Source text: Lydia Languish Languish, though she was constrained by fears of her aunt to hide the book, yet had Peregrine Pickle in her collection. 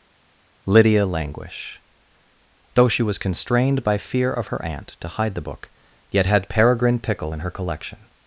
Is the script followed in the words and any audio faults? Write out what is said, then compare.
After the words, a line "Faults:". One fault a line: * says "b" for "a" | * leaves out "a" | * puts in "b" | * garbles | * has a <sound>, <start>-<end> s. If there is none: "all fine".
Lydia Languish, though she was constrained by fear of her aunt to hide the book, yet had Peregrine Pickle in her collection.
Faults:
* leaves out "Languish"
* says "fear" for "fears"